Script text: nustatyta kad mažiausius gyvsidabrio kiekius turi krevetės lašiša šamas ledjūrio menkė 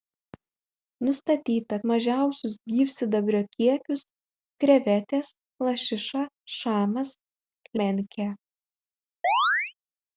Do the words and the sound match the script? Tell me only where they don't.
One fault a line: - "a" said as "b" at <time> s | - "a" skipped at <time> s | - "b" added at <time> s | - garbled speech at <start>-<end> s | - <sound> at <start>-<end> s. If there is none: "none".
- "kad" skipped at 1.8 s
- "turi" skipped at 4.1 s
- "ledjūrio" skipped at 7.2 s
- chirp at 9.2-9.7 s